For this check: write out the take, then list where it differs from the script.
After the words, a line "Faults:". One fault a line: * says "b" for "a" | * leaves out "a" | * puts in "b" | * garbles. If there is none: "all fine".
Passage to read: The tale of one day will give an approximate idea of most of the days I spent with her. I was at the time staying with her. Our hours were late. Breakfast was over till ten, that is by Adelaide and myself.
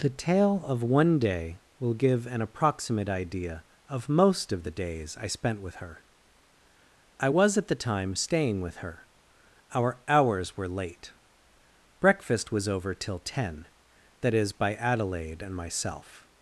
The tale of one day will give an approximate idea of most of the days I spent with her. I was at the time staying with her. Our hours were late. Breakfast was over till ten, that is by Adelaide and myself.
Faults:
all fine